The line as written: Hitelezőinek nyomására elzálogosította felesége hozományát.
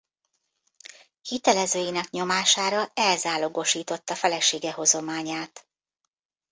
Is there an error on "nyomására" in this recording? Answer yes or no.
no